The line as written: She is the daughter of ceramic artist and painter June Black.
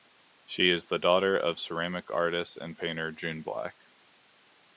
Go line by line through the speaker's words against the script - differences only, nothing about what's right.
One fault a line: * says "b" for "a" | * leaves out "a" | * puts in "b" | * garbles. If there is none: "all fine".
all fine